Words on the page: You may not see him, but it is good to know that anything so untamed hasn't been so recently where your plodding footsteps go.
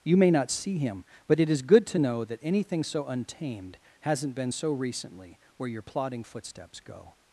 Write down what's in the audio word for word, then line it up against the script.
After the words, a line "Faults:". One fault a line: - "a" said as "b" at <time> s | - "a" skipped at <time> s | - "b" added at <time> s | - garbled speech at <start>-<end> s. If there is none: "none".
You may not see him, but it is good to know that anything so untamed hasn't been so recently where your plodding footsteps go.
Faults:
none